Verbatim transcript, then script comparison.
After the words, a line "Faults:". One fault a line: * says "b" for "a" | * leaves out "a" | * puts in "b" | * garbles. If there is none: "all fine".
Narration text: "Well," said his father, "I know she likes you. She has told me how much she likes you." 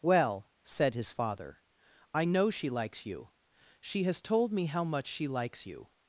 "Well," said his father, "I know she likes you. She has told me how much she likes you."
Faults:
all fine